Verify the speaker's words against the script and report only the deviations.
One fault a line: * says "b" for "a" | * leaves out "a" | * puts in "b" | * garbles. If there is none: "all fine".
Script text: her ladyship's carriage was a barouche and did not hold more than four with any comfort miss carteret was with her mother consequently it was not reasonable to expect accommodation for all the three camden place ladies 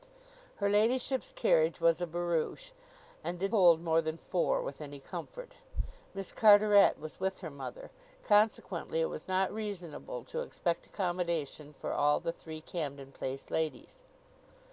* leaves out "not"